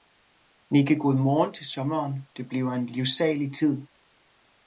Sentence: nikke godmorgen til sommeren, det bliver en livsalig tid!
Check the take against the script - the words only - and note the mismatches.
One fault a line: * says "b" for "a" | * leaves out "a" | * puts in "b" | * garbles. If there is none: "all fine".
all fine